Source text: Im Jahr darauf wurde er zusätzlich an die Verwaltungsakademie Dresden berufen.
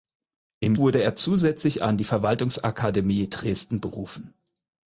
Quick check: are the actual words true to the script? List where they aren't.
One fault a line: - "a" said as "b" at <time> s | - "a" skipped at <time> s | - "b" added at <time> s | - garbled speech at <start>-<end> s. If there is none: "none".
- "Jahr darauf" skipped at 0.8 s